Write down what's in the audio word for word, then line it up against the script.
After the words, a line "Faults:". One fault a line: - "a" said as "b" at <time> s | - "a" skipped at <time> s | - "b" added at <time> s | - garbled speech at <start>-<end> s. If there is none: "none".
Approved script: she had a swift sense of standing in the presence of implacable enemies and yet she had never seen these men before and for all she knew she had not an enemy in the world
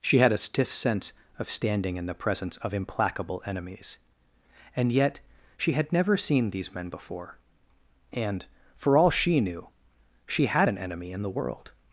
she had a stiff sense of standing in the presence of implacable enemies and yet she had never seen these men before and for all she knew she had an enemy in the world
Faults:
- "swift" said as "stiff" at 0.4 s
- "not" skipped at 10.7 s